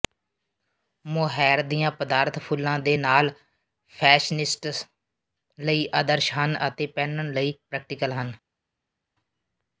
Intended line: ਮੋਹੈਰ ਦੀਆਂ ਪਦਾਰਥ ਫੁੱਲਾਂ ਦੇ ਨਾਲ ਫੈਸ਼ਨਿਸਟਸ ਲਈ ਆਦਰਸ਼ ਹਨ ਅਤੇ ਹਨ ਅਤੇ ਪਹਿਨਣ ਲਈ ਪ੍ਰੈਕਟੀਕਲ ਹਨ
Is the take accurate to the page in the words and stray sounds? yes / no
no